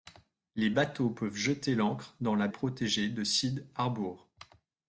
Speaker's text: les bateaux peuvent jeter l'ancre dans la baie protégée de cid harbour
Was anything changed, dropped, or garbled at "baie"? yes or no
yes